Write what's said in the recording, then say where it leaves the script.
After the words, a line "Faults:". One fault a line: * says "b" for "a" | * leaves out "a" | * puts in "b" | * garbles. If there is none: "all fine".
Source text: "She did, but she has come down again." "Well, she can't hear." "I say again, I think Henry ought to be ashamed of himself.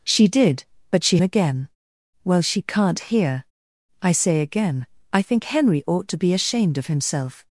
"She did, but she again." "Well, she can't hear." "I say again, I think Henry ought to be ashamed of himself.
Faults:
* leaves out "has come down"